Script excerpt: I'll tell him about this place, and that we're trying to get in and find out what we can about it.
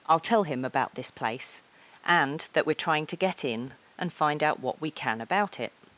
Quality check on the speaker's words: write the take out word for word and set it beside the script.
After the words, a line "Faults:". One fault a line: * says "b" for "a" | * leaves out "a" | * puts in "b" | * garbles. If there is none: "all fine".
I'll tell him about this place, and that we're trying to get in and find out what we can about it.
Faults:
all fine